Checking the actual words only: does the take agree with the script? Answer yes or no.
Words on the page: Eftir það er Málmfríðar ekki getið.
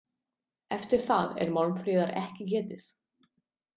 yes